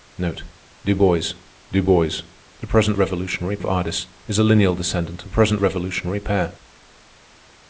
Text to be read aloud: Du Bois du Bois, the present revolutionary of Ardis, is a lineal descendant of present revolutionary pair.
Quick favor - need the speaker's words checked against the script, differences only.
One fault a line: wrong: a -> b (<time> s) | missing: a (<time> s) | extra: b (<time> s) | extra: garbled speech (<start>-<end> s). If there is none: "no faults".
no faults